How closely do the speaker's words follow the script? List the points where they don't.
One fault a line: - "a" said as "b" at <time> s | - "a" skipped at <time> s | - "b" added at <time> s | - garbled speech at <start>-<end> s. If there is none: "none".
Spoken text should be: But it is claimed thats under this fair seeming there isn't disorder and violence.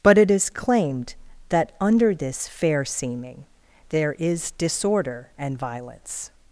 - "thats" said as "that" at 1.5 s
- "isn't" said as "is" at 4.1 s